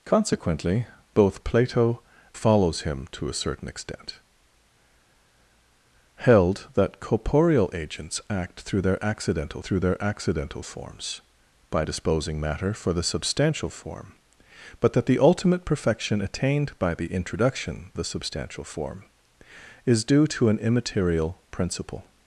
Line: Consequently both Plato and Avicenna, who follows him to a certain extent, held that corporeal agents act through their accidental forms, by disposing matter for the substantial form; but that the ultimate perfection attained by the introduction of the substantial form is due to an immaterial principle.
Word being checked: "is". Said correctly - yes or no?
yes